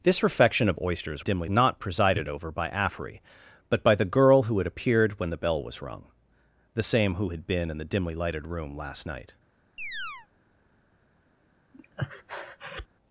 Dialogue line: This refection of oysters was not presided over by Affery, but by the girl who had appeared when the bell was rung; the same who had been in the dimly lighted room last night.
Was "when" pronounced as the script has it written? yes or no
yes